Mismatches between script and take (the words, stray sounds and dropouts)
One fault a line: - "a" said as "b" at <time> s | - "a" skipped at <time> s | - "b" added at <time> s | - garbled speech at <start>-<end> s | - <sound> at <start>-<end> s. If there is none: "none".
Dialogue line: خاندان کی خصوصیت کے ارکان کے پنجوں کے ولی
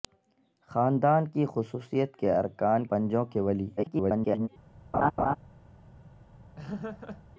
- "کے" skipped at 2.9 s
- garbled speech at 3.8-4.5 s
- laugh at 4.9-5.4 s
- laugh at 6.6-7.2 s